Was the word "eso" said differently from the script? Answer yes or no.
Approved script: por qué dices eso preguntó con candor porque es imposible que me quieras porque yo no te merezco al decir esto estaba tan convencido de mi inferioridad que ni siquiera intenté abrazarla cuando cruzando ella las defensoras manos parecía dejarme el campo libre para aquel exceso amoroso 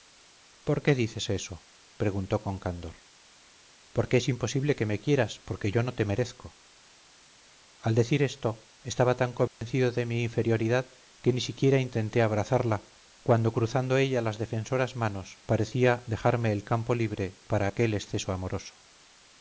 no